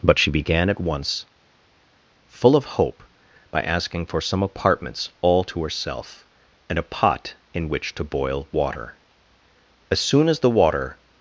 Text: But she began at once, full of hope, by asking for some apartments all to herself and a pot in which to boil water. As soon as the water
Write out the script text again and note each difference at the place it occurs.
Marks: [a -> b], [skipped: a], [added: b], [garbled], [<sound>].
But she began at once, full of hope, by asking for some apartments all to herself and a pot in which to boil water. As soon as the water